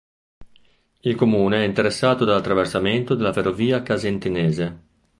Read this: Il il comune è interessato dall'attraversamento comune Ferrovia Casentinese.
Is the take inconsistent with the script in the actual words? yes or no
yes